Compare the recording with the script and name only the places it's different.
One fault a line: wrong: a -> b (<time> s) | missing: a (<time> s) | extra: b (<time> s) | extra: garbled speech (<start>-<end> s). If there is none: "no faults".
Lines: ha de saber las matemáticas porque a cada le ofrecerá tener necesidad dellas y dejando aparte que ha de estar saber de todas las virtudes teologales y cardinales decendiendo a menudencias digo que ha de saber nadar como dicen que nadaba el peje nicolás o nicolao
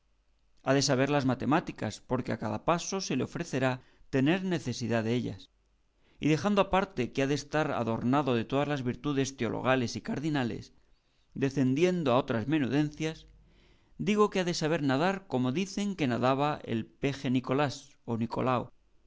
extra: paso se (2.6 s)
wrong: saber -> adornado (7.7 s)
extra: otras (12.2 s)